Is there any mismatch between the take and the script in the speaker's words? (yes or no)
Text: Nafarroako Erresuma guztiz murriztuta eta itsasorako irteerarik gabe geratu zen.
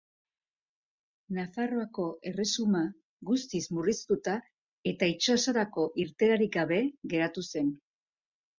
no